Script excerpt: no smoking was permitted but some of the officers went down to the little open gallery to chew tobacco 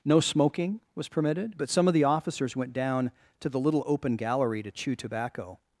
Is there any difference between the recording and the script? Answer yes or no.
no